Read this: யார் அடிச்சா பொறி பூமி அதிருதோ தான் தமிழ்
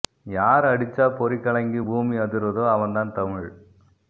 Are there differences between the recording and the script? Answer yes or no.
yes